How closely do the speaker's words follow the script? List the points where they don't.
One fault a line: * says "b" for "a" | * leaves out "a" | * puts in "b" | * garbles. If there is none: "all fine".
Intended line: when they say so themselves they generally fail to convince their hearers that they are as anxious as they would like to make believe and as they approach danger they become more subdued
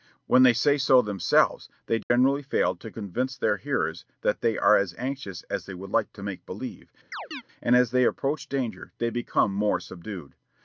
all fine